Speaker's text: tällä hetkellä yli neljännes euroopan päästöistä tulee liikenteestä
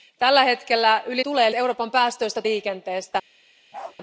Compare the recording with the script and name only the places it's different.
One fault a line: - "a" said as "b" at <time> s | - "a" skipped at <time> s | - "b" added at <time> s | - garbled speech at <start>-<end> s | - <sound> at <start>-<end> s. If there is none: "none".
- "neljännes" said as "tulee" at 1.2 s
- "tulee" skipped at 2.4 s
- bark at 3.7-4.0 s